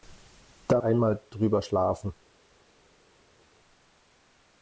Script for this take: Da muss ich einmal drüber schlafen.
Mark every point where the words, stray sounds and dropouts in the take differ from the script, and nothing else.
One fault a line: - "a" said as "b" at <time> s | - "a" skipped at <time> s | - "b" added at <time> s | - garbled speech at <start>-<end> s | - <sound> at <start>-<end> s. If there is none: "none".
- "muss ich" skipped at 0.8 s